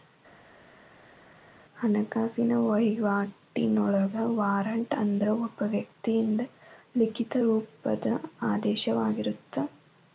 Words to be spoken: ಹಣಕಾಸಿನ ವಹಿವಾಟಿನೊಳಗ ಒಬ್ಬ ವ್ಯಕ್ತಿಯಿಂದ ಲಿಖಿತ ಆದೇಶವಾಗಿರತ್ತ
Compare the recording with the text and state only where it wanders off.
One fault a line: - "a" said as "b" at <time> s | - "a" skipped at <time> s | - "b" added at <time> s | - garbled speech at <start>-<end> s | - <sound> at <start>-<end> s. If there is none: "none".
- "ವಾರಂಟ್ ಅಂದ್ರ" added at 4.3 s
- "ರೂಪದ" added at 7.4 s